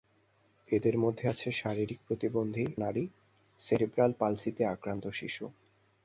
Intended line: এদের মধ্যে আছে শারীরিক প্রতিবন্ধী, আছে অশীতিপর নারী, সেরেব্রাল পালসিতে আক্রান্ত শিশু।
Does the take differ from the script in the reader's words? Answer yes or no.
yes